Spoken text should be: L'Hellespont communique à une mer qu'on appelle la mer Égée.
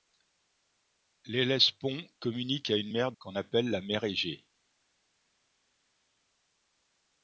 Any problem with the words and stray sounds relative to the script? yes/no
no